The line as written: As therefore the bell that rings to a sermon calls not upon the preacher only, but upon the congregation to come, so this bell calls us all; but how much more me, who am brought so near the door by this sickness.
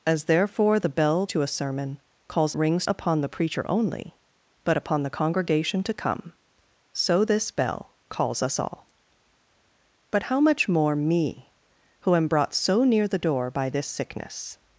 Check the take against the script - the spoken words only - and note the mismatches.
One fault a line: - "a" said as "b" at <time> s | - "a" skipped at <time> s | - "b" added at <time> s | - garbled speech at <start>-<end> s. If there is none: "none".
- "that rings" skipped at 1.2 s
- "not" said as "rings" at 2.5 s